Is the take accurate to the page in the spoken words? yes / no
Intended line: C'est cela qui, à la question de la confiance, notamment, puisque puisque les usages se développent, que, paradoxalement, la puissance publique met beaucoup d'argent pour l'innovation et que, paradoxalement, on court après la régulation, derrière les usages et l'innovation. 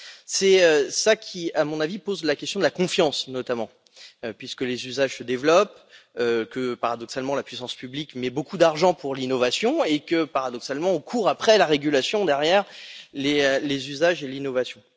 no